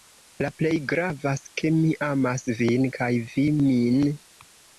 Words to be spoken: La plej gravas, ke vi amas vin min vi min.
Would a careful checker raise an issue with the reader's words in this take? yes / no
yes